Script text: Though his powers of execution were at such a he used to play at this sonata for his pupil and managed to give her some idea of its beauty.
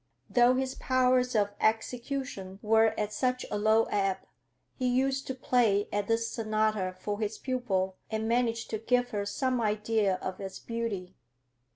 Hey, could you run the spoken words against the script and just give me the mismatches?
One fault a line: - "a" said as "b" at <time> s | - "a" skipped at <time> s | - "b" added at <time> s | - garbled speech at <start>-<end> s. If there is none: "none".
- "low ebb" added at 3.6 s